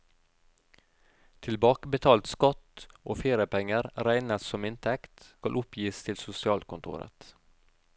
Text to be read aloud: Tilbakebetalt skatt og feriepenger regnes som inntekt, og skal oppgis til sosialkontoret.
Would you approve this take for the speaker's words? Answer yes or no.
no